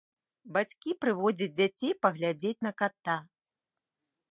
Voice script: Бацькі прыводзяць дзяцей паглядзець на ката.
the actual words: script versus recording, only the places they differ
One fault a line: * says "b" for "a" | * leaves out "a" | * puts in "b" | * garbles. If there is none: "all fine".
all fine